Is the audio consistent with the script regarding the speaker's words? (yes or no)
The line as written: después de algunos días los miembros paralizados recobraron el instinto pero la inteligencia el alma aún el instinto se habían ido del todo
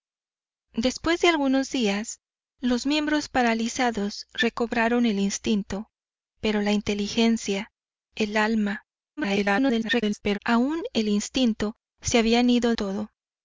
no